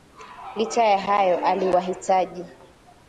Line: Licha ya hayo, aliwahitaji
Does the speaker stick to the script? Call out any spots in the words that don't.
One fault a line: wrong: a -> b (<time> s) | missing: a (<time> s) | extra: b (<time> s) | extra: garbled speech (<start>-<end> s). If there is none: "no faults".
no faults